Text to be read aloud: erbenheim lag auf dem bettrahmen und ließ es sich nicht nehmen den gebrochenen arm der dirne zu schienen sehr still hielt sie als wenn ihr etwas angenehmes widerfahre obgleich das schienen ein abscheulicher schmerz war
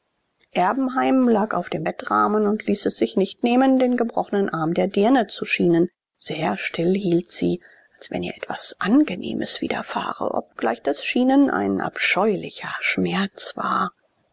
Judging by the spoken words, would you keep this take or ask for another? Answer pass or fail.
pass